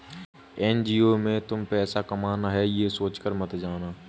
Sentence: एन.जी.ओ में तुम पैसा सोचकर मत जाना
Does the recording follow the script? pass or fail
fail